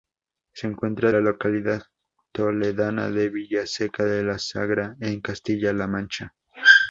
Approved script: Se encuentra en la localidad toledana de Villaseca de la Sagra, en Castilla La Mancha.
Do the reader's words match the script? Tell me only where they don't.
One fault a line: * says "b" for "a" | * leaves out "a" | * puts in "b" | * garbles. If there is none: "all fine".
* leaves out "en"